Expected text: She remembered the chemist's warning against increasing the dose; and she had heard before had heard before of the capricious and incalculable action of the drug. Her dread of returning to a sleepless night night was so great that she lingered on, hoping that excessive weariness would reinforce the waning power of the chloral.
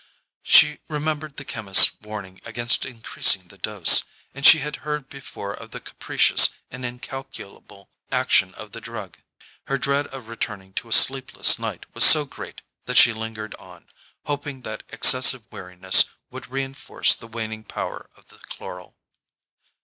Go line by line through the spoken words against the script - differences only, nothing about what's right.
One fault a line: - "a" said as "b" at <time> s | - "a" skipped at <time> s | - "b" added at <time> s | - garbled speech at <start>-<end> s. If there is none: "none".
- "had heard before" skipped at 5.5 s
- "night" skipped at 11.9 s